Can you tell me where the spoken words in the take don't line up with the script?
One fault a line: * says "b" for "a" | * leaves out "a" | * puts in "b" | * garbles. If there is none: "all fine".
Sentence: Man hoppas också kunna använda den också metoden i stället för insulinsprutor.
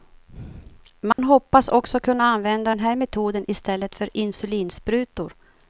* says "här" for "också"